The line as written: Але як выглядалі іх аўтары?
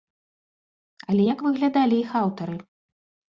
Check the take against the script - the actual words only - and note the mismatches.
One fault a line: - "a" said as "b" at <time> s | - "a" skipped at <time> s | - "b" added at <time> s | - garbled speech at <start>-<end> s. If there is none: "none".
none